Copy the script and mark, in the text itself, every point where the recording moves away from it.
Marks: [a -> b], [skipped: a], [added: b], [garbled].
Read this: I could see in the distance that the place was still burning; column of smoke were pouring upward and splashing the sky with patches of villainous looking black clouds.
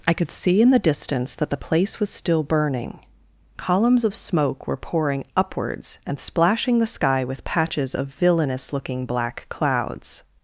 I could see in the distance that the place was still burning; [column -> columns] of smoke were pouring [upward -> upwards] and splashing the sky with patches of villainous looking black clouds.